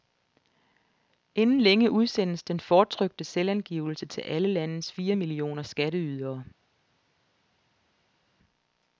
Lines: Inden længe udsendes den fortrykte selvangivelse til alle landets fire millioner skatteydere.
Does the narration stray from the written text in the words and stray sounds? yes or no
no